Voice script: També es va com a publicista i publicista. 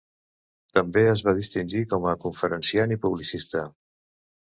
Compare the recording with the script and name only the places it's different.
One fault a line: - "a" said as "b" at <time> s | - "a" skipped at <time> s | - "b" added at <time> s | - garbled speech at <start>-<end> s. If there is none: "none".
- "distingir" added at 1.4 s
- "publicista" said as "conferenciant" at 2.3 s